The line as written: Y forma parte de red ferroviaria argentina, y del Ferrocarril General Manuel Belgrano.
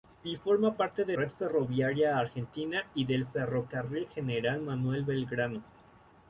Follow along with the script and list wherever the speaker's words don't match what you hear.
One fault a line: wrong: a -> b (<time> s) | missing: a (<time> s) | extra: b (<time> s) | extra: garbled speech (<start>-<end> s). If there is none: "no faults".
no faults